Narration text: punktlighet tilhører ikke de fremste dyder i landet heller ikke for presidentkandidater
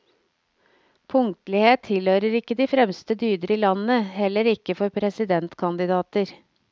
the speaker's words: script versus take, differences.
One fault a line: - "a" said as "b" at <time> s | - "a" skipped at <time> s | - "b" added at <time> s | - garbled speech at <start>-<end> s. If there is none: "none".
none